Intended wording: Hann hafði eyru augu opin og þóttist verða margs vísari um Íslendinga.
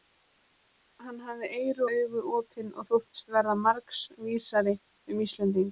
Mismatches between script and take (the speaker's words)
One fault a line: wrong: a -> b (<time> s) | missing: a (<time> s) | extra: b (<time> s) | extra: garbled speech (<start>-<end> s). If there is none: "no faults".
no faults